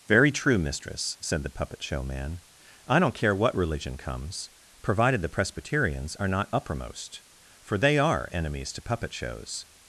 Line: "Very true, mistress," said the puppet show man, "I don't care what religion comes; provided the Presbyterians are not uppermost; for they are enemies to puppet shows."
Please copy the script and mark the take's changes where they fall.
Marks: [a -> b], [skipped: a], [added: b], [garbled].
"Very true, mistress," said the puppet show man, "I don't care what religion comes; provided the Presbyterians are not uppermost; for they are enemies to puppet shows."